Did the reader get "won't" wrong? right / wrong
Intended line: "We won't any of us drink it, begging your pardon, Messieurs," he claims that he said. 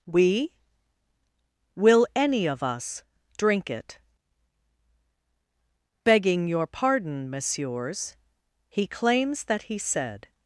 wrong